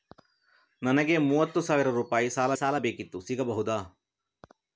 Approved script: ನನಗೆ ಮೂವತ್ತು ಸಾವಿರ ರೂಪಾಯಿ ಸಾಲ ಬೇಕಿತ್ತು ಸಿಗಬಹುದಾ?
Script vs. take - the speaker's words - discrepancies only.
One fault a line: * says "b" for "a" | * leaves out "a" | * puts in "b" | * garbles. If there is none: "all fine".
* puts in "ಸಾಲ"